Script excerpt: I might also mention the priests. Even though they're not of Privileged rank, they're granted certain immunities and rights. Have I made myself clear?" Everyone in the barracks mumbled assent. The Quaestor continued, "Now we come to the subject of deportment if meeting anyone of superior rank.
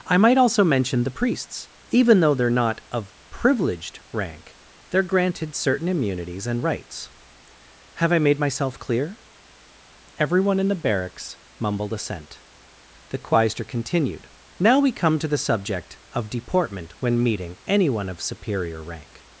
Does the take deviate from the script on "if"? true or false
true